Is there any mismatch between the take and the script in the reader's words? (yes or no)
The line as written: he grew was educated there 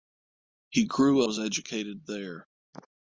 no